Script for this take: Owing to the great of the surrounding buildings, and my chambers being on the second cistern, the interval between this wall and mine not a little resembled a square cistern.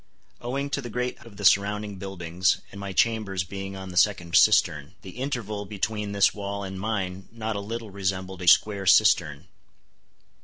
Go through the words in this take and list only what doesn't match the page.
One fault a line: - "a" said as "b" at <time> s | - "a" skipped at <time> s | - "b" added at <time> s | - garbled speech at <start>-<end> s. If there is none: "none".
none